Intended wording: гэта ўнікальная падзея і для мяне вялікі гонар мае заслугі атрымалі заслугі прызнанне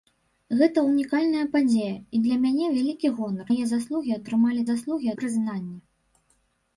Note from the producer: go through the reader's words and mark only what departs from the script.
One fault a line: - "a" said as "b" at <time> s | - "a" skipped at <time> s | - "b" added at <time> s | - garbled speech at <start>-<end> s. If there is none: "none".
none